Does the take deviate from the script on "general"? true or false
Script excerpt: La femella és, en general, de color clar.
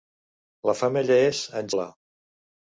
true